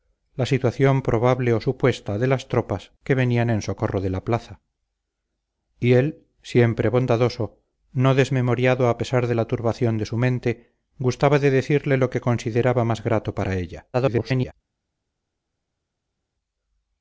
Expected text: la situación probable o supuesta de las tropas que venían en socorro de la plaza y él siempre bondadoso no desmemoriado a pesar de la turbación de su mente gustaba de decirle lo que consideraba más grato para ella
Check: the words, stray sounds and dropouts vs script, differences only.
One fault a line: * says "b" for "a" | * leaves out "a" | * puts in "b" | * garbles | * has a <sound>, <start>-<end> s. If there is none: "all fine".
* garbles